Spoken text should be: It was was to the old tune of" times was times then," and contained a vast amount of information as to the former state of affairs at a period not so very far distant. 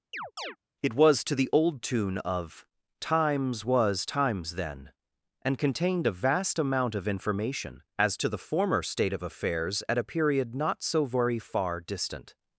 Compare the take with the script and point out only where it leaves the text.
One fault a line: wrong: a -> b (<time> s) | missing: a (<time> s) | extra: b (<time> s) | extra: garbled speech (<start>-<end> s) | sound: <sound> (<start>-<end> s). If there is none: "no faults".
sound: chirp (0.1-0.6 s)
missing: was (1.3 s)